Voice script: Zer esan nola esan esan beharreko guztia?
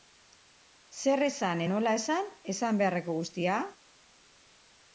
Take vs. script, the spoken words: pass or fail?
pass